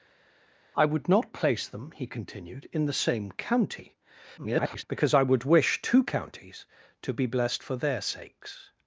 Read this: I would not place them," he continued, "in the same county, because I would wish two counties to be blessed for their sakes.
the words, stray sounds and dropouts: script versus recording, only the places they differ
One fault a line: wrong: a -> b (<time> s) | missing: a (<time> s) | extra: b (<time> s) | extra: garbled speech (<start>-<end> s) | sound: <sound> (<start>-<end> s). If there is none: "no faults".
extra: garbled speech (4.4-4.8 s)